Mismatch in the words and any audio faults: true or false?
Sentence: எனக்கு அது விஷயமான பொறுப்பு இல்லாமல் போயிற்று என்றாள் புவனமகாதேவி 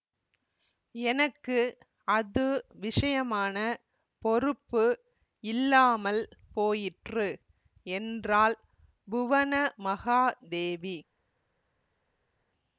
false